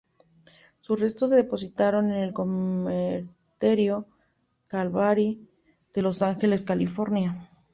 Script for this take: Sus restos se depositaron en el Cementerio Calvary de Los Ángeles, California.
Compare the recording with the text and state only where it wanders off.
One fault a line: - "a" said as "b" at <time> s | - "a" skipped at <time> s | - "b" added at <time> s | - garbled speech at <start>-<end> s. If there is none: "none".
none